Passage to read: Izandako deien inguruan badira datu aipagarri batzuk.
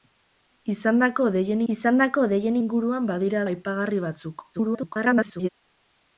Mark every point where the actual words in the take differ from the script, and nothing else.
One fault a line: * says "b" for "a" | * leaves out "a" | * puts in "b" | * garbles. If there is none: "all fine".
* puts in "izandako deien"
* leaves out "datu"
* garbles